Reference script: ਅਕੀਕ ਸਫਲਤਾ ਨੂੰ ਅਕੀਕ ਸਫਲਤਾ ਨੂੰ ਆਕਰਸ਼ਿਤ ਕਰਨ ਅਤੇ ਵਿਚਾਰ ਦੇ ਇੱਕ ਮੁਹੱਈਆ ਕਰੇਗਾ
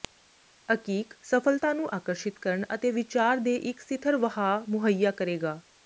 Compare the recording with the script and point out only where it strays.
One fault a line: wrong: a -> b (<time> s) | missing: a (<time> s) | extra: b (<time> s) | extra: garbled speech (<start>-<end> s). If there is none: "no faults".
missing: ਅਕੀਕ ਸਫਲਤਾ ਨੂੰ (1.9 s)
extra: ਸਿਥਰ ਵਹਾਅ (3.8 s)